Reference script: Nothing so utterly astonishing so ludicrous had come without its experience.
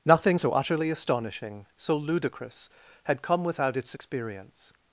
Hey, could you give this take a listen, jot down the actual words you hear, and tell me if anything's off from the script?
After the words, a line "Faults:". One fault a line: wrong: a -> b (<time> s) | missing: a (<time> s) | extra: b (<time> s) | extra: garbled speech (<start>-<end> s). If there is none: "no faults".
Nothing so utterly astonishing so ludicrous had come without its experience.
Faults:
no faults